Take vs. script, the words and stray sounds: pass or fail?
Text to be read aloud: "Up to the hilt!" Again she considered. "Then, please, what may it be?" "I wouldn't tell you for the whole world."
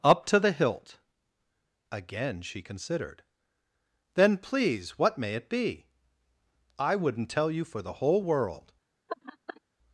fail